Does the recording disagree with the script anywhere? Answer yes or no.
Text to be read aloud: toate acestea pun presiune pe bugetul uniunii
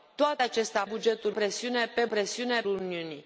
yes